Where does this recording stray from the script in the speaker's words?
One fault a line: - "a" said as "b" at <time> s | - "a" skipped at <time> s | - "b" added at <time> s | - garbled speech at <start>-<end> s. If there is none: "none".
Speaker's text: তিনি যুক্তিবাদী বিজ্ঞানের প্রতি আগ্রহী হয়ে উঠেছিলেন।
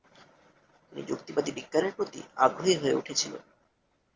none